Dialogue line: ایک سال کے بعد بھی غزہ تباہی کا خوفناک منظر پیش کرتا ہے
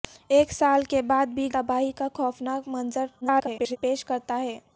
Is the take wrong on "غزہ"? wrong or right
wrong